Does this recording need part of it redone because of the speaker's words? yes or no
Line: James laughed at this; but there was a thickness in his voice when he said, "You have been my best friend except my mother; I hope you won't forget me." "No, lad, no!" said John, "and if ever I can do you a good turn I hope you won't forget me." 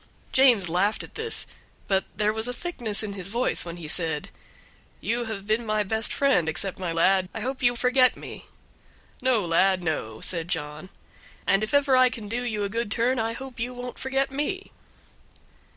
yes